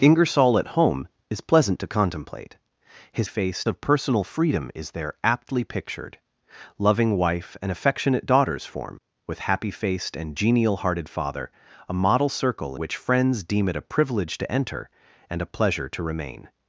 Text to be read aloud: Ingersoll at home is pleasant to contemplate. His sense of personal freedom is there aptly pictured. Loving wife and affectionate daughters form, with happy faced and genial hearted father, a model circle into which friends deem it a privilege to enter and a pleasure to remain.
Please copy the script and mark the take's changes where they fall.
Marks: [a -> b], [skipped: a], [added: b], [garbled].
Ingersoll at home is pleasant to contemplate. His [sense -> faced] of personal freedom is there aptly pictured. Loving wife and affectionate daughters form, with happy faced and genial hearted father, a model circle [skipped: into] which friends deem it a privilege to enter and a pleasure to remain.